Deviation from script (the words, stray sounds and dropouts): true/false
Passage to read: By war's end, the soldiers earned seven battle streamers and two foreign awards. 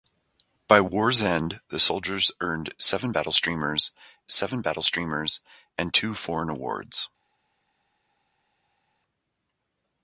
true